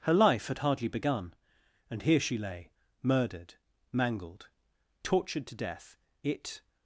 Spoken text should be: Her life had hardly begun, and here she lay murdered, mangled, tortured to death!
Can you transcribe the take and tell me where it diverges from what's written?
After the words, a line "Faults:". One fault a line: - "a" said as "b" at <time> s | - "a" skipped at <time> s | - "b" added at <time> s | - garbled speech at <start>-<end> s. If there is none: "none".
Her life had hardly begun, and here she lay murdered, mangled, tortured to death! It
Faults:
- "It" added at 6.2 s